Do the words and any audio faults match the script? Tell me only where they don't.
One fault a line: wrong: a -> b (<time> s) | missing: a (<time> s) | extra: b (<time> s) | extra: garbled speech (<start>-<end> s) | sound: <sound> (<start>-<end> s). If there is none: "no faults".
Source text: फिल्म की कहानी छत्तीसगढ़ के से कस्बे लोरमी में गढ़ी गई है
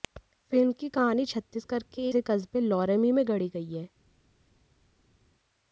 no faults